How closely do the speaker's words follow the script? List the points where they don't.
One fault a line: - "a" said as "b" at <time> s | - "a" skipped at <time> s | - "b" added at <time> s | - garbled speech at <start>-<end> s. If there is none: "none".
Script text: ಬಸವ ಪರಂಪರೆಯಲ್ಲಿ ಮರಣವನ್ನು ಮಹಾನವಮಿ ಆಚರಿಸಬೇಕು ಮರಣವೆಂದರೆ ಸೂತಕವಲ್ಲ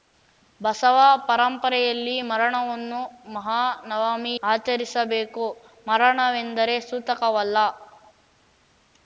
none